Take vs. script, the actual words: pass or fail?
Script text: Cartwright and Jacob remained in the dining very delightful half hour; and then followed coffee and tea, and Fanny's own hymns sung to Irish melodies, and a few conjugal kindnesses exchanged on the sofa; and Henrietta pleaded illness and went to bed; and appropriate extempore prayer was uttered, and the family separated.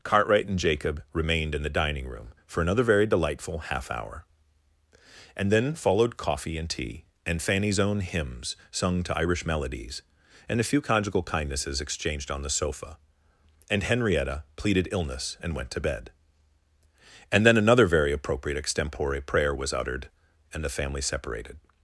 fail